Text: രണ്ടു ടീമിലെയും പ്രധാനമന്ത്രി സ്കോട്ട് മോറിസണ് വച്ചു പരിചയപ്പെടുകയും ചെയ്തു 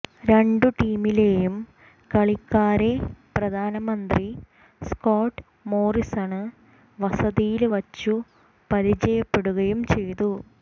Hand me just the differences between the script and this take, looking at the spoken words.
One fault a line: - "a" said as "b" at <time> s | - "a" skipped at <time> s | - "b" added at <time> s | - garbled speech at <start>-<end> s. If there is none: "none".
- "കളിക്കാരെ" added at 2.1 s
- "വസതിയില്" added at 7.0 s